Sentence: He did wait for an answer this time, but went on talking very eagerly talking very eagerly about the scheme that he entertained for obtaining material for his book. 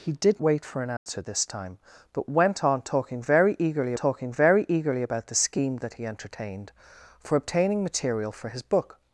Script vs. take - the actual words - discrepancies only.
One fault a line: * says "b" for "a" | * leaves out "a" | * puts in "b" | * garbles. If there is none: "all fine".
all fine